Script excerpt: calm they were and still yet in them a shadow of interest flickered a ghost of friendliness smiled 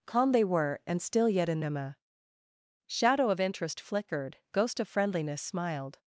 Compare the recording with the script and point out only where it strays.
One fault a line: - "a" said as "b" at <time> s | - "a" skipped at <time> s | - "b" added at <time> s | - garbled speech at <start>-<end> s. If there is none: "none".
- "a" skipped at 4.4 s